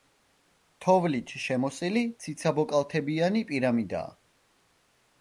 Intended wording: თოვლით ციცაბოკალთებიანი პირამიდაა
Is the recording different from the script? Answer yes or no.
yes